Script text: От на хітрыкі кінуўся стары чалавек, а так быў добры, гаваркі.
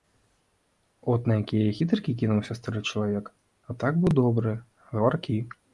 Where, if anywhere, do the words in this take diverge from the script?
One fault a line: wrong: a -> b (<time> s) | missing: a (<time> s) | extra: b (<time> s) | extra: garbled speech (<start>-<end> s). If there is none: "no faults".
extra: якія (1.4 s)